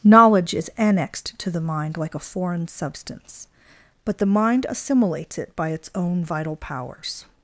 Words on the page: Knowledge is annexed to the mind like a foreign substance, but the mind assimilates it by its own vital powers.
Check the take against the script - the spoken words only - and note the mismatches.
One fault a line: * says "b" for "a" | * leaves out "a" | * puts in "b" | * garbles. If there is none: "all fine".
all fine